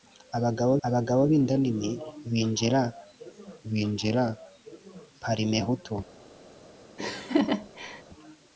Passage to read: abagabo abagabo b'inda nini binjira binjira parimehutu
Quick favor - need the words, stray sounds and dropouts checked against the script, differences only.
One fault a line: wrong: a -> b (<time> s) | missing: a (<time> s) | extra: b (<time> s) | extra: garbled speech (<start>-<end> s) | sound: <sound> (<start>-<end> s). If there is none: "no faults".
sound: laugh (7.0-8.0 s)